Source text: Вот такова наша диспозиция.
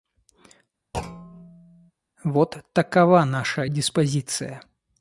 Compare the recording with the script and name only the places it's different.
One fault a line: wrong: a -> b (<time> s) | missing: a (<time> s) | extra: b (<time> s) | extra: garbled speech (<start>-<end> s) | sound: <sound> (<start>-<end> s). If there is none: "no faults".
sound: thud (0.9-1.9 s)